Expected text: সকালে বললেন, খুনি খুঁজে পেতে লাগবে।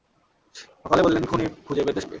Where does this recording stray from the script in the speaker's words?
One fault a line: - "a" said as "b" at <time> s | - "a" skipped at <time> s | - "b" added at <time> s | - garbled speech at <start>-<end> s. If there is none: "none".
none